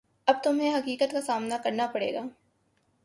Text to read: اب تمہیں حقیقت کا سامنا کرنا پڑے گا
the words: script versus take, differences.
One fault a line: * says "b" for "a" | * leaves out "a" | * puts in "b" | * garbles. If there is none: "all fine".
all fine